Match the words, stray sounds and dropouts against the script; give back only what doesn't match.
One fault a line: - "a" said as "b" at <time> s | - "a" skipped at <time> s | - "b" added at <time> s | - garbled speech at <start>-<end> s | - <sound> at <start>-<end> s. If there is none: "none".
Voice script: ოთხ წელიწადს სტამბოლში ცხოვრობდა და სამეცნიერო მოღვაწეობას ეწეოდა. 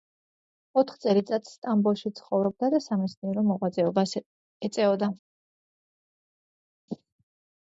none